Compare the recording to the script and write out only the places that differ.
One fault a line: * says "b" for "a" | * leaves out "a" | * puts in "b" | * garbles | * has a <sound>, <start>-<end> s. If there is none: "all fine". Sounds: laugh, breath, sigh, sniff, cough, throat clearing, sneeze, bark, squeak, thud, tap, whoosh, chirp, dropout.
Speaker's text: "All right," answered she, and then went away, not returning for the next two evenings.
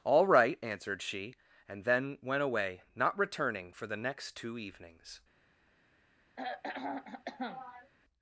* has a throat clearing, 6.4-7.9 s